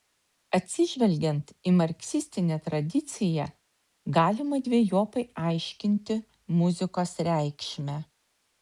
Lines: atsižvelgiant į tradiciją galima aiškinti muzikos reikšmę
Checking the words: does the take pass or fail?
fail